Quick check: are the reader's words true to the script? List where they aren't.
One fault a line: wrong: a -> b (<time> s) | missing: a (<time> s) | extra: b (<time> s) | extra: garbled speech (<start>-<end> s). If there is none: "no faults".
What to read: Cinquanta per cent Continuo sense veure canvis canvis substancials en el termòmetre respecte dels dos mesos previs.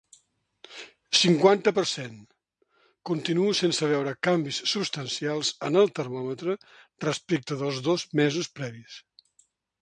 missing: canvis (4.6 s)